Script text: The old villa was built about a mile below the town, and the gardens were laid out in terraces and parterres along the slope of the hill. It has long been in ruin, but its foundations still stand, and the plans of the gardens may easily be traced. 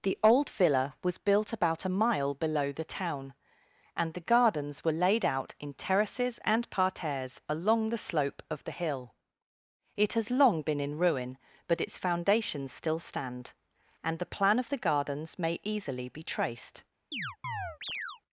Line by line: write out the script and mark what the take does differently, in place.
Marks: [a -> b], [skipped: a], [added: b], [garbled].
The old villa was built about a mile below the town, and the gardens were laid out in terraces and parterres along the slope of the hill. It has long been in ruin, but its foundations still stand, and the [plans -> plan] of the gardens may easily be traced.